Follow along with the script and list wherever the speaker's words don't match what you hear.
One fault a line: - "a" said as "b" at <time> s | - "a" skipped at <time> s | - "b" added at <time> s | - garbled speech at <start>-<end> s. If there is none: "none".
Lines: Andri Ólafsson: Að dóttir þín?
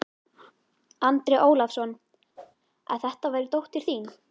- "þetta væri" added at 3.1 s